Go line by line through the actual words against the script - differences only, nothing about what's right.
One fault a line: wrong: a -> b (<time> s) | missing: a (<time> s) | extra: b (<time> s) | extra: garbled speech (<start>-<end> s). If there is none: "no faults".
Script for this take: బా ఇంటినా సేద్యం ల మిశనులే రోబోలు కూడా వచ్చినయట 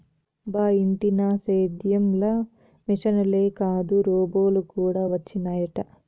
extra: కాదు (3.6 s)